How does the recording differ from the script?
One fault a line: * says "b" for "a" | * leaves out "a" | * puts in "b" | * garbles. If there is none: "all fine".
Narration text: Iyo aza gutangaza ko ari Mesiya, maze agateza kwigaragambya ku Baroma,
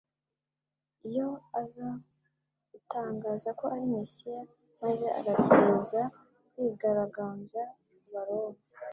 all fine